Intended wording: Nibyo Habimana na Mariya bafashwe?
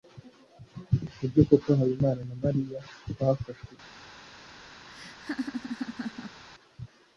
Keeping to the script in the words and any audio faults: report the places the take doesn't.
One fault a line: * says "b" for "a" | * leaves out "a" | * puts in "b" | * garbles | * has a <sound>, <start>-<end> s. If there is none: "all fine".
* puts in "koko"
* has a laugh, 4.9-6.4 s